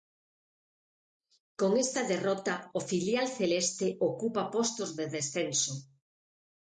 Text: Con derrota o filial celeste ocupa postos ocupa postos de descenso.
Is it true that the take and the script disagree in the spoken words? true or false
true